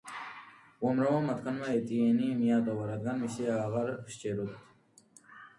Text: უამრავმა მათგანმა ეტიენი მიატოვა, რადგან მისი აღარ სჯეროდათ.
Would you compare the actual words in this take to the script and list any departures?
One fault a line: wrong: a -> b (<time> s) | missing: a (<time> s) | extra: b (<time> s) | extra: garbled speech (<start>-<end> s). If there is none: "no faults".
no faults